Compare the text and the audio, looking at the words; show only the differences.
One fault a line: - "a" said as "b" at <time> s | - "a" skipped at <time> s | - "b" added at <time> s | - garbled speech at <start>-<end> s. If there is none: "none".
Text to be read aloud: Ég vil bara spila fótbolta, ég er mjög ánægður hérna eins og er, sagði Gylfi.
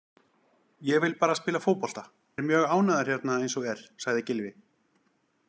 - "ég" skipped at 2.0 s